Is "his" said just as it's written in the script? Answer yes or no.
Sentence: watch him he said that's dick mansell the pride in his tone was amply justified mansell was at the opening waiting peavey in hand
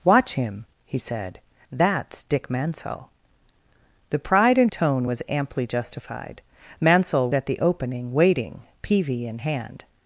no